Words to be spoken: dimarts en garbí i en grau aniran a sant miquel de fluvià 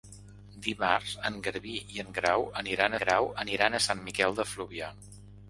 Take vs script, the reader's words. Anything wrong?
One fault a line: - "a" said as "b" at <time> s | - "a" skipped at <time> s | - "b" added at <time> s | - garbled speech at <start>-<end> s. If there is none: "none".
- "grau aniran" added at 3.0 s